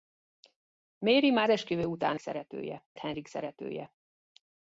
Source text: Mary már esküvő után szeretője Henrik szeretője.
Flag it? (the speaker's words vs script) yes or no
no